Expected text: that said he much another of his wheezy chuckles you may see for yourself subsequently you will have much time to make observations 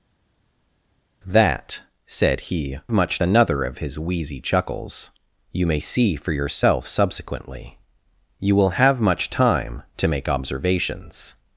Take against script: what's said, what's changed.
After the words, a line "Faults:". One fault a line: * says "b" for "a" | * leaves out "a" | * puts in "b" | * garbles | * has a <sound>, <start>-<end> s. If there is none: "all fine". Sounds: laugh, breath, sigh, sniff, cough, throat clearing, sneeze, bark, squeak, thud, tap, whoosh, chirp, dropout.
that said he much another of his wheezy chuckles you may see for yourself subsequently you will have much time to make observations
Faults:
all fine